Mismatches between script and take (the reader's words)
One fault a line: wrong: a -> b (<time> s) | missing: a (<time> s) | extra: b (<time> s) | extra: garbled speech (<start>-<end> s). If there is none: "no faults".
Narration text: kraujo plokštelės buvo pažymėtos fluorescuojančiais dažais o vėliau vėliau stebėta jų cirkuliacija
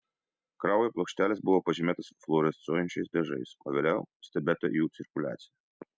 missing: vėliau (4.0 s)